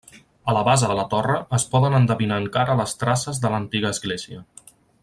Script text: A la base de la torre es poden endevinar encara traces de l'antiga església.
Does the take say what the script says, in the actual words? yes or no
no